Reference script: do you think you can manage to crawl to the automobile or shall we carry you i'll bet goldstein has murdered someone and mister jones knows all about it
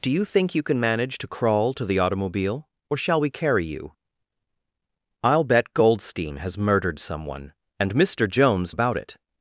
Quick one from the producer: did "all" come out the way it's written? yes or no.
no